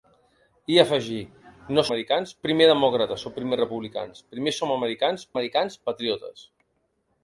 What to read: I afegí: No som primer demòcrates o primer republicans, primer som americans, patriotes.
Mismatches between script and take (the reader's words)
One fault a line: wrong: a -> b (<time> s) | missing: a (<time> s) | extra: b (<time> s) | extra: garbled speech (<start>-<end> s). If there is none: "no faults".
wrong: som -> americans (1.9 s)
extra: americans (5.3 s)